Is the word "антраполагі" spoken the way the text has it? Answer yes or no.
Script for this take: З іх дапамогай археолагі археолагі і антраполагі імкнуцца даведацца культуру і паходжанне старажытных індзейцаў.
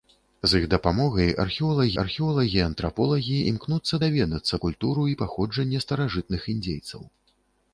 yes